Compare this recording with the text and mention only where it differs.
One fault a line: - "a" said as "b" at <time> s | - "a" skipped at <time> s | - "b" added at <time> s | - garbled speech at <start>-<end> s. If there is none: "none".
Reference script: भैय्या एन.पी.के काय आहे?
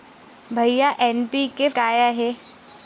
none